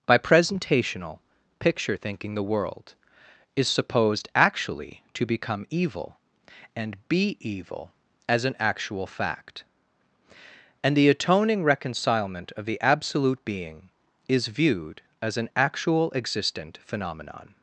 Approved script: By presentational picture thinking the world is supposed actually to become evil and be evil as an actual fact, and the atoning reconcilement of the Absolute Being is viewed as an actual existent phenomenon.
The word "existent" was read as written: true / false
true